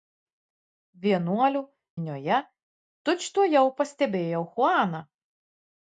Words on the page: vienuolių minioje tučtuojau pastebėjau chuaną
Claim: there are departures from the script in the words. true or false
false